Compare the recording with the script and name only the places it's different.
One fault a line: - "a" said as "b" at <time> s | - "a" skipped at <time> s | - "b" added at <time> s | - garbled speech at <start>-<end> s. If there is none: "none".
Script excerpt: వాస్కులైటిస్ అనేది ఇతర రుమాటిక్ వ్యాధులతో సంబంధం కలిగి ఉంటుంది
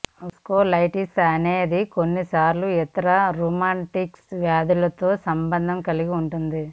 - "కొన్నిసార్లు" added at 1.9 s